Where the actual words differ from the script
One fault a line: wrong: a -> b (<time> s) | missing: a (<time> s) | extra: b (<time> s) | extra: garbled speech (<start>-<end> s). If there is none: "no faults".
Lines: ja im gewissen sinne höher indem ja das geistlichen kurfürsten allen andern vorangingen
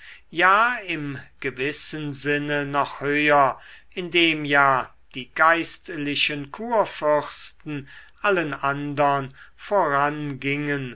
extra: noch (2.6 s)
wrong: das -> die (5.1 s)